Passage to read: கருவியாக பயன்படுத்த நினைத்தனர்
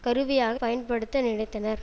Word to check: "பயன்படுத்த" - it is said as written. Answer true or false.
true